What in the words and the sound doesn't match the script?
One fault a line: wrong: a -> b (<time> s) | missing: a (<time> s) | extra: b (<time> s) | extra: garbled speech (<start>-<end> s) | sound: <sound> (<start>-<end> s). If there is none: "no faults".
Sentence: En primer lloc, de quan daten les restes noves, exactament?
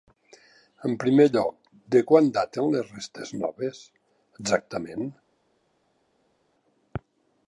no faults